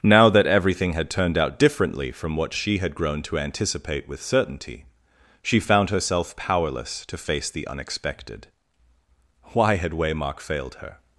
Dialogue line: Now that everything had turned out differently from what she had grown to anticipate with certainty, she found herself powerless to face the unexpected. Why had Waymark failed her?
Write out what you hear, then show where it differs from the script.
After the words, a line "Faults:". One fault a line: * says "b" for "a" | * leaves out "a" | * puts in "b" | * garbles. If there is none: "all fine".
Now that everything had turned out differently from what she had grown to anticipate with certainty, she found herself powerless to face the unexpected. Why had Waymark failed her?
Faults:
all fine